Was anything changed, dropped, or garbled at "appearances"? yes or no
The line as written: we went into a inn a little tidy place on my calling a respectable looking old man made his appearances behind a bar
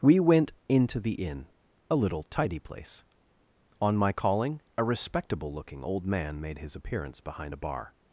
yes